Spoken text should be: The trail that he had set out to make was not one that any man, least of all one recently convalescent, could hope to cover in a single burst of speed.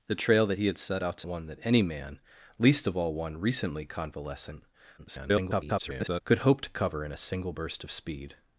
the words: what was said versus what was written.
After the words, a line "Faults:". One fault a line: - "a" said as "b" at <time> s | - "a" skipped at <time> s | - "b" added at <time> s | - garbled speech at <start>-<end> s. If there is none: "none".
The trail that he had set out to one that any man, least of all one recently convalescent, [garbled] could hope to cover in a single burst of speed.
Faults:
- "make was not" skipped at 1.3 s
- garbled speech at 5.0-6.2 s